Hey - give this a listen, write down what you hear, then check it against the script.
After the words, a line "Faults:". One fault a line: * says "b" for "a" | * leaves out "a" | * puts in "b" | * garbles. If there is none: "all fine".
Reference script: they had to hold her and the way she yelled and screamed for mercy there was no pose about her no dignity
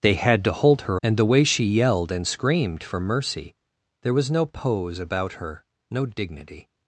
they had to hold her and the way she yelled and screamed for mercy there was no pose about her no dignity
Faults:
all fine